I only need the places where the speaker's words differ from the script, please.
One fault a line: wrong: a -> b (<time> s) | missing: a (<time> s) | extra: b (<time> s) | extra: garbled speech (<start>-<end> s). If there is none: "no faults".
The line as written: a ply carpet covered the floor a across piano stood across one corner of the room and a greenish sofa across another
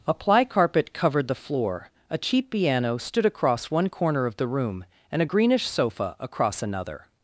wrong: across -> cheap (2.2 s)